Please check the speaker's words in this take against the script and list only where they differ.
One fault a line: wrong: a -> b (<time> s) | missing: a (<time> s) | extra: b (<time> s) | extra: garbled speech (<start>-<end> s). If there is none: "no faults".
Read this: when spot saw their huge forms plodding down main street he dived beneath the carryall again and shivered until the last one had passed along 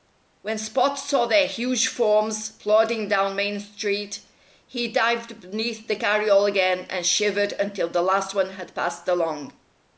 no faults